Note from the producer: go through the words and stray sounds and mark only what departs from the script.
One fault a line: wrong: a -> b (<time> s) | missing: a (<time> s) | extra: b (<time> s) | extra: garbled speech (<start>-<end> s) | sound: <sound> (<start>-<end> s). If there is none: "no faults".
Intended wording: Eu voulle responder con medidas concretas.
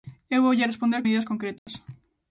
missing: con (1.0 s)
sound: dropout (1.6-1.7 s)